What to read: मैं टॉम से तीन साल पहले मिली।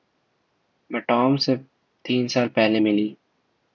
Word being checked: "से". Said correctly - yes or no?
yes